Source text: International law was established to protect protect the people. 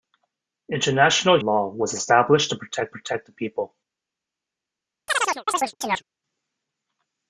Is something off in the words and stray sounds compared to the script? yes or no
yes